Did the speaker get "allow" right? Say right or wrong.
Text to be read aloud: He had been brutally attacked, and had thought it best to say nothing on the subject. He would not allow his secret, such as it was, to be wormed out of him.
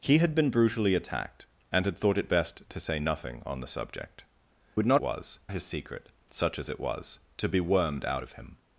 wrong